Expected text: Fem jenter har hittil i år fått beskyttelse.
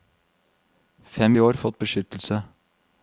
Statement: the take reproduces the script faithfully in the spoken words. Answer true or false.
false